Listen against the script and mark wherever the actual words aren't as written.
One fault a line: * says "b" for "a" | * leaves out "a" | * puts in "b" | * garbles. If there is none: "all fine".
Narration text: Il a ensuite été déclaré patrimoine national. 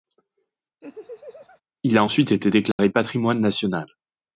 all fine